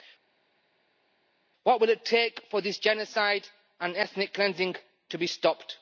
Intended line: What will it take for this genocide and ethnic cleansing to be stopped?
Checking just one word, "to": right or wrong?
right